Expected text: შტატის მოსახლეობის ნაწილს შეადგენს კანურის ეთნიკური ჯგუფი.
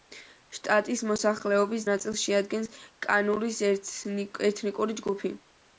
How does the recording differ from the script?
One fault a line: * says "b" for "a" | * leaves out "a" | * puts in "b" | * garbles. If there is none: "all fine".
all fine